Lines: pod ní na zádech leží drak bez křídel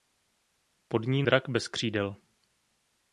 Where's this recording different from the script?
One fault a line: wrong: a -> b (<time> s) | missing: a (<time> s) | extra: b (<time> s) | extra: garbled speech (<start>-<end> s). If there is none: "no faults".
missing: na zádech leží (1.2 s)